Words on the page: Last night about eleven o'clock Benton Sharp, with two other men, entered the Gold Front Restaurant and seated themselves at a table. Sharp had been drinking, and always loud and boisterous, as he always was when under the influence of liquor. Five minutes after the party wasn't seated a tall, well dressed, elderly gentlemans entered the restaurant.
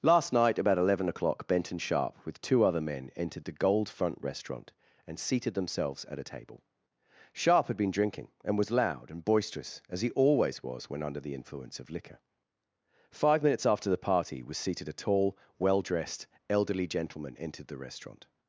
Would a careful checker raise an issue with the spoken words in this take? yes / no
yes